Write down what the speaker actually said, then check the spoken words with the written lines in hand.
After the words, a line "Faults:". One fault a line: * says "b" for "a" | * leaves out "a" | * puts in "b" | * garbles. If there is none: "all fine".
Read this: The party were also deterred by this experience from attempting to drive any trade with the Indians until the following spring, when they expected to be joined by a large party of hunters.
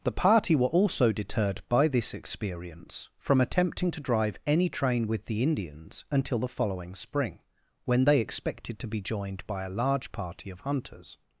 The party were also deterred by this experience from attempting to drive any train with the Indians until the following spring, when they expected to be joined by a large party of hunters.
Faults:
* says "train" for "trade"